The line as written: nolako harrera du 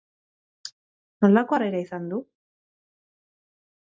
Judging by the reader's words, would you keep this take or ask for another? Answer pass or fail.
fail